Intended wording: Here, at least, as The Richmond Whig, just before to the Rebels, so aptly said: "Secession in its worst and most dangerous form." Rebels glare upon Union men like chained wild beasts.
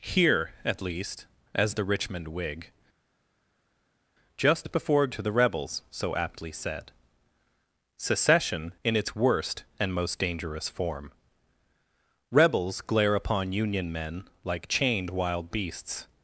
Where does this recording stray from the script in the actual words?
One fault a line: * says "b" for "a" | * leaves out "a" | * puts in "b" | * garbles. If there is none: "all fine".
all fine